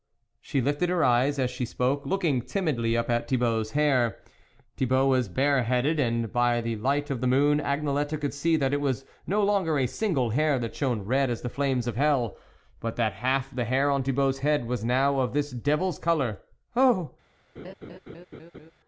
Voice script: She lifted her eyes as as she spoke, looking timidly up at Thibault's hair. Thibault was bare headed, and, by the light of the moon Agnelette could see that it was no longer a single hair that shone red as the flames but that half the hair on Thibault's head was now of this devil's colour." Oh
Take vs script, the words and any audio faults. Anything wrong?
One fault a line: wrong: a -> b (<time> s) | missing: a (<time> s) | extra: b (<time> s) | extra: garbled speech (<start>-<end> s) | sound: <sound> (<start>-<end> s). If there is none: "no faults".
missing: as (1.5 s)
extra: of hell (11.9 s)
sound: laugh (17.6-18.7 s)